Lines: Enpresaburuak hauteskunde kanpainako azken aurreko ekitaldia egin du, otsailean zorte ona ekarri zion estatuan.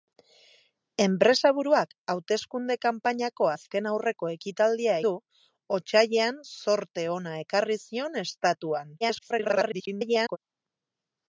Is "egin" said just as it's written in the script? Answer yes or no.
no